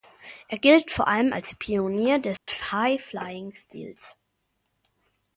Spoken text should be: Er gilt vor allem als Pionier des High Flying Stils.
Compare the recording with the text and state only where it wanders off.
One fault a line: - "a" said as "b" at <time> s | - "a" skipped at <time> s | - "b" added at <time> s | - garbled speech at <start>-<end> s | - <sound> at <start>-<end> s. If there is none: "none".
- dropout at 2.4-2.5 s